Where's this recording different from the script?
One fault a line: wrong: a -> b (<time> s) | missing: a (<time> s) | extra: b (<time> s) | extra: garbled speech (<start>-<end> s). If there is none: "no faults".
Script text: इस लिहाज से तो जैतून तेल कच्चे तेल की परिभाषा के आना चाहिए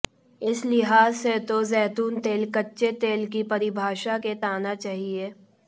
no faults